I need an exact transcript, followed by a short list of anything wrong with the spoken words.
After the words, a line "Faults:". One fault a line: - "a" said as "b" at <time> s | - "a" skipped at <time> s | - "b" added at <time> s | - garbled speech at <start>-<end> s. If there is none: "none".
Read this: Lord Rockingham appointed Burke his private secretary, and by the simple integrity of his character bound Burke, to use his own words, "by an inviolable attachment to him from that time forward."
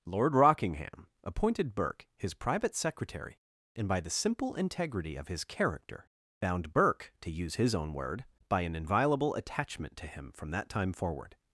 Lord Rockingham appointed Burke his private secretary, and by the simple integrity of his character bound Burke, to use his own word, "by an inviolable attachment to him from that time forward."
Faults:
- "words" said as "word" at 7.9 s